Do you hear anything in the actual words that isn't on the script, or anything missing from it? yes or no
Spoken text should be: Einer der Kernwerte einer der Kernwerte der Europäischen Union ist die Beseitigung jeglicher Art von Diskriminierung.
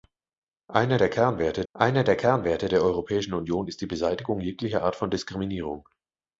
no